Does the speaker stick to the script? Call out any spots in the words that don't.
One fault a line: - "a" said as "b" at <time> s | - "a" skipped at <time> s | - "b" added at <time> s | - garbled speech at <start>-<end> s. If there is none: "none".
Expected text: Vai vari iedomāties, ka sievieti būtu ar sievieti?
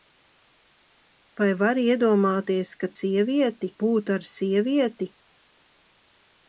none